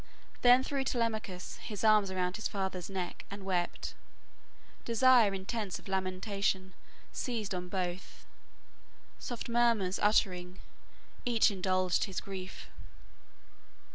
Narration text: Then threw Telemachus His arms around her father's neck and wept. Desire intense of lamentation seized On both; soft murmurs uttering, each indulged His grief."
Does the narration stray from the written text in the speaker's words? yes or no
yes